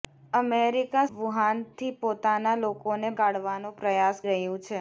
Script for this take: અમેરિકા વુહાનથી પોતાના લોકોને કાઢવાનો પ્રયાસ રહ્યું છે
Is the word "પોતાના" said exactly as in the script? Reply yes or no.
yes